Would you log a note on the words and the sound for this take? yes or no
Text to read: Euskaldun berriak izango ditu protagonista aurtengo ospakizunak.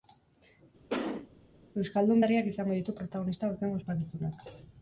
yes